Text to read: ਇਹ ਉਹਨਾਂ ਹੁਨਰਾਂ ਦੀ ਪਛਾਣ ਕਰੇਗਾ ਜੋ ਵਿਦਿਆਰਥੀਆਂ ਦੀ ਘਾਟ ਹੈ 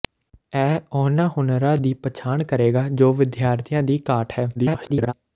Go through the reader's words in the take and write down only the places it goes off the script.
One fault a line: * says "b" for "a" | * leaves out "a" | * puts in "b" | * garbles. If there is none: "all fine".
* garbles